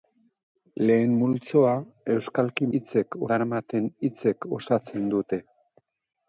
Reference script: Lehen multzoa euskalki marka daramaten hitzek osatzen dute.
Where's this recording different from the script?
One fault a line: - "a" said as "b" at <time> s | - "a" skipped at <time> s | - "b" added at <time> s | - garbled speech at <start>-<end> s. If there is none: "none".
- "marka" said as "hitzek" at 2.8 s